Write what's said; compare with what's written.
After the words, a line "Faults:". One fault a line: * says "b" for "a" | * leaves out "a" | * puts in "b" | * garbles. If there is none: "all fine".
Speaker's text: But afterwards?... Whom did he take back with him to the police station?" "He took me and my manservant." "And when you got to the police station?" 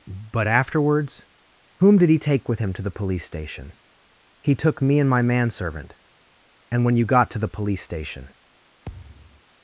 But afterwards?... Whom did he take with him to the police station?" "He took me and my manservant." "And when you got to the police station?"
Faults:
* leaves out "back"